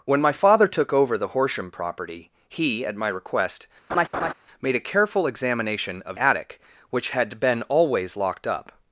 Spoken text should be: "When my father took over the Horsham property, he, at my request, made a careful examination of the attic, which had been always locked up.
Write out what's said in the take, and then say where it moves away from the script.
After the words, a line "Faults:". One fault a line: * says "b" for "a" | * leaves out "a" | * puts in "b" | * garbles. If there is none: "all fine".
"When my father took over the Horsham property, he, at my request, made a careful examination of attic, which had been always locked up.
Faults:
* leaves out "the"